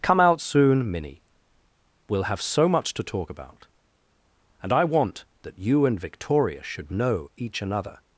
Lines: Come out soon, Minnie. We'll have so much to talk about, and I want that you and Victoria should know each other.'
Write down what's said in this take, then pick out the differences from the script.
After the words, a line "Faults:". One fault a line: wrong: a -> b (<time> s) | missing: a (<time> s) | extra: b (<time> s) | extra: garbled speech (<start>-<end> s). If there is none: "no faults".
Come out soon, Minnie. We'll have so much to talk about, and I want that you and Victoria should know each another.'
Faults:
wrong: other -> another (7.6 s)